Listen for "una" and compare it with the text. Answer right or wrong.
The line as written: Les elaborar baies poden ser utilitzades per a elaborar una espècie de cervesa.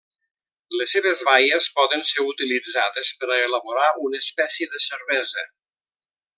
right